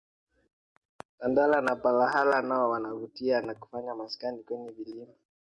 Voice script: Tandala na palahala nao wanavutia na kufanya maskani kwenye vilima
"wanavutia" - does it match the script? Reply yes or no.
yes